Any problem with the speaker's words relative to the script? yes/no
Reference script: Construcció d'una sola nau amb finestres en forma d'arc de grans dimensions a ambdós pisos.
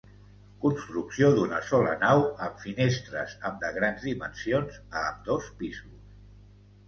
yes